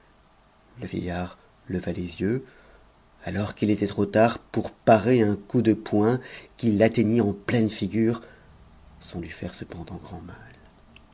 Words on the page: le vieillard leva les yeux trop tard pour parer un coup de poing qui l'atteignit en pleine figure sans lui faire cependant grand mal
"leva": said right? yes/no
yes